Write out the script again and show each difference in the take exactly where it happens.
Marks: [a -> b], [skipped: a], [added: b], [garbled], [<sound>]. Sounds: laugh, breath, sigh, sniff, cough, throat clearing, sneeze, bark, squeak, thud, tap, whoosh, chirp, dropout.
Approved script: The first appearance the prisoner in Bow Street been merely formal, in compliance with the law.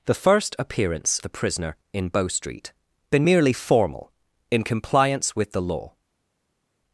The first appearance the prisoner in Bow Street been merely formal, in compliance with the law.